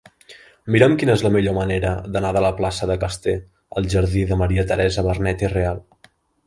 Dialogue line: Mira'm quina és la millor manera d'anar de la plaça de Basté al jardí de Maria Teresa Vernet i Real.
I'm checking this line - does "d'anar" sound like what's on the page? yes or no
yes